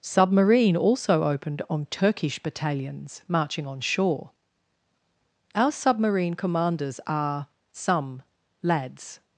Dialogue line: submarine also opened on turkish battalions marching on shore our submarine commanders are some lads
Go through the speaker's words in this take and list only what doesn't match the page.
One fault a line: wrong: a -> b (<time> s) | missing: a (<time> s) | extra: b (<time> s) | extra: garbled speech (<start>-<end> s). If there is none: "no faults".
no faults